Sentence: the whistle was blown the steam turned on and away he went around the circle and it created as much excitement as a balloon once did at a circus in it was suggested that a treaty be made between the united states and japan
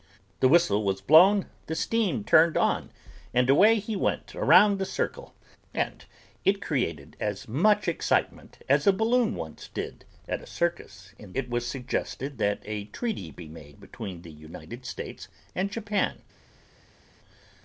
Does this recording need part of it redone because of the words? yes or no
no